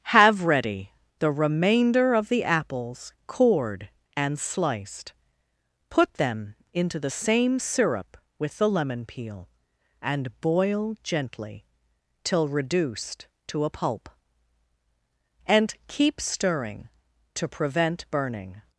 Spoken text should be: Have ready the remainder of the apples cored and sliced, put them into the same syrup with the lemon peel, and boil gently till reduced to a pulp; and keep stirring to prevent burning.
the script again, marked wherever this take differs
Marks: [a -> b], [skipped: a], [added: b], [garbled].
Have ready the remainder of the apples cored and sliced, put them into the same syrup with the lemon peel, and boil gently till reduced to a pulp; and keep stirring to prevent burning.